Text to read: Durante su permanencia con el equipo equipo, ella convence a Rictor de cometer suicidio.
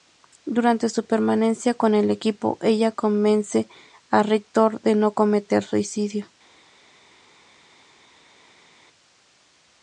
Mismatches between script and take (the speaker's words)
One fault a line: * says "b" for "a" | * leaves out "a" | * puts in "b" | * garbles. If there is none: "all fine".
* leaves out "equipo"
* puts in "no"